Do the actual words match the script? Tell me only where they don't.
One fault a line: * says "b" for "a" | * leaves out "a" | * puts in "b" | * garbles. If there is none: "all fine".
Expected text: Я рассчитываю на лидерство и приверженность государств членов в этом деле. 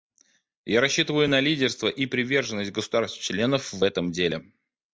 all fine